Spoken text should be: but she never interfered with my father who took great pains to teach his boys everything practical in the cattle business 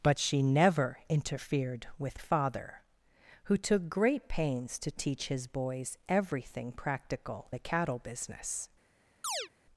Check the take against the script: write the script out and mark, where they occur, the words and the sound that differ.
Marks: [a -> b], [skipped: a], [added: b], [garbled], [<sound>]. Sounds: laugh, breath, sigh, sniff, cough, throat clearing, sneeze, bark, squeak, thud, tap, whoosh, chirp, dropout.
but she never interfered with [skipped: my] father who took great pains to teach his boys everything practical [skipped: in] the cattle business [chirp]